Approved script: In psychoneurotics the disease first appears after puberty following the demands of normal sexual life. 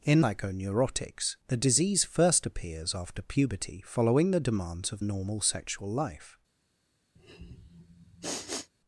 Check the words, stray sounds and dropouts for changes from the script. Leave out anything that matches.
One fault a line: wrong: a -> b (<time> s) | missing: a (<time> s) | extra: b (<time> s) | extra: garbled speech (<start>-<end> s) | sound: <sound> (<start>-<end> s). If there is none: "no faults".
sound: sniff (7.2-8.7 s)